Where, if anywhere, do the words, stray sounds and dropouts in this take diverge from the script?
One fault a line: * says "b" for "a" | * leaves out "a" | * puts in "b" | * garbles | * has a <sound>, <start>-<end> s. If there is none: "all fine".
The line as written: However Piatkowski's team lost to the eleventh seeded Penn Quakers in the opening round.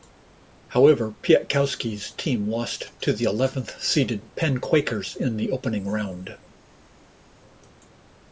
all fine